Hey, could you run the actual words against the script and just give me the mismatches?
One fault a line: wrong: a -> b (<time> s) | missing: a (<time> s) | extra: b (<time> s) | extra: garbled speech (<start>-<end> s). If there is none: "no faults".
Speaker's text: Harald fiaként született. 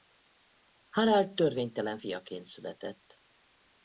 extra: törvénytelen (1.3 s)